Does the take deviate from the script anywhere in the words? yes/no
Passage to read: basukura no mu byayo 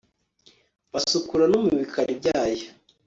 yes